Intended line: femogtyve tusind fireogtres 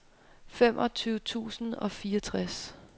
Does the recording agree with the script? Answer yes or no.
no